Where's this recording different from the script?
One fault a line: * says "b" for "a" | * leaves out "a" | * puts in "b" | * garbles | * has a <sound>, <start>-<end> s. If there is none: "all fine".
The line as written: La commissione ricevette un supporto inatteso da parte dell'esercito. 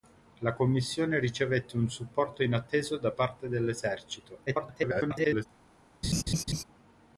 * garbles
* has a laugh, 6.0-6.6 s